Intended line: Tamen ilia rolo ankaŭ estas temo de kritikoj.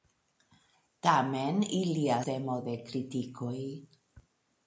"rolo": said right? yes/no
no